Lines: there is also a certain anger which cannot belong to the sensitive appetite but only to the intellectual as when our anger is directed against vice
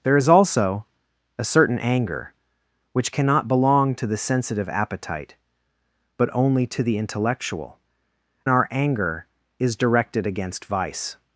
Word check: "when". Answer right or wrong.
wrong